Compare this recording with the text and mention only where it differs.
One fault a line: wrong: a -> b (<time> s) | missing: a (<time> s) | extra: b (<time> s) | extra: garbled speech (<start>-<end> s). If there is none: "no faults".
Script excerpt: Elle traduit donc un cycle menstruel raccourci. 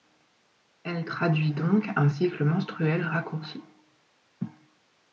no faults